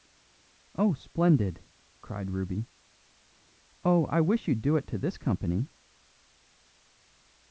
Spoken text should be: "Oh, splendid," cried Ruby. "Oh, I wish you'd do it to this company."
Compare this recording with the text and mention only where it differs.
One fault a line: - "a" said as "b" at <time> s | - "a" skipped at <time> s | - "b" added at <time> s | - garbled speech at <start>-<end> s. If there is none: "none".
none